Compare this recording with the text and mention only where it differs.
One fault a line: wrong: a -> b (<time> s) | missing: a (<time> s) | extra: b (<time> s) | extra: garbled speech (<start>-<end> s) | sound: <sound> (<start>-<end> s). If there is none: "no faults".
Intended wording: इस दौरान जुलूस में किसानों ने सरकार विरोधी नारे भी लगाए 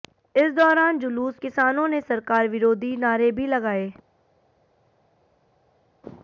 missing: में (1.4 s)